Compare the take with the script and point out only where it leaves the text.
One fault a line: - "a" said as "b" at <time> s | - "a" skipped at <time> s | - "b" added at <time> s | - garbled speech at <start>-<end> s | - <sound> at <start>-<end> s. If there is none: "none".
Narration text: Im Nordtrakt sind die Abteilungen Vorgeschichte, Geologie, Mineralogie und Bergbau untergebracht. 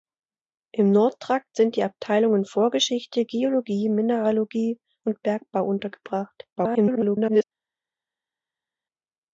- garbled speech at 6.5-7.4 s